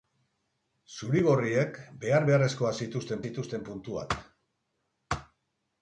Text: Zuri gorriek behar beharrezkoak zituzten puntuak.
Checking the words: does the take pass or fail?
fail